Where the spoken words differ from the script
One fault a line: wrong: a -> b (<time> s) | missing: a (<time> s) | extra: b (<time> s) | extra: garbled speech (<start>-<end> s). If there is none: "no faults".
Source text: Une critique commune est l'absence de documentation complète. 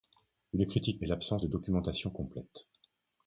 missing: commune (1.0 s)